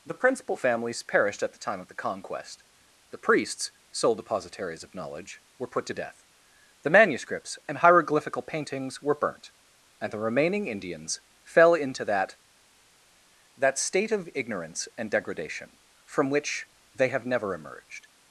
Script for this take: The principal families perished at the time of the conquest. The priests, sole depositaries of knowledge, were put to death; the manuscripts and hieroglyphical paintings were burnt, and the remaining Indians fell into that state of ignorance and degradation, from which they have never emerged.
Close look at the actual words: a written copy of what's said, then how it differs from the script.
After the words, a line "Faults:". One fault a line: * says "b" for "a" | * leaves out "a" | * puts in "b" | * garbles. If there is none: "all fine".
The principal families perished at the time of the conquest. The priests, sole depositaries of knowledge, were put to death; the manuscripts and hieroglyphical paintings were burnt, and the remaining Indians fell into that that state of ignorance and degradation, from which they have never emerged.
Faults:
* puts in "that"